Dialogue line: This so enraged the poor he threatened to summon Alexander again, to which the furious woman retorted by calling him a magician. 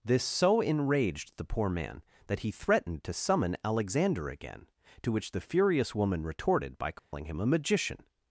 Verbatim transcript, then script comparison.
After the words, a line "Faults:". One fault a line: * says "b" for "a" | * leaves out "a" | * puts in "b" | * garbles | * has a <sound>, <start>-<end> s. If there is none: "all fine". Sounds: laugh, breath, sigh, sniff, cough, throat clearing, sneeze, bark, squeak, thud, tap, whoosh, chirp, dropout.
This so enraged the poor man that he threatened to summon Alexander again, to which the furious woman retorted by calling him a magician.
Faults:
* puts in "man that"
* has a dropout, 7.0-7.1 s